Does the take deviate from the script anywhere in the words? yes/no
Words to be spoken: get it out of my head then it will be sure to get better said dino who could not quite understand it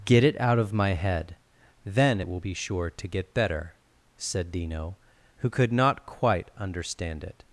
no